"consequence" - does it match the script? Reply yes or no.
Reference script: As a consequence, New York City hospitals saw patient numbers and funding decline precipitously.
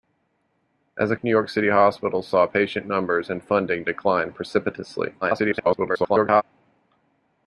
no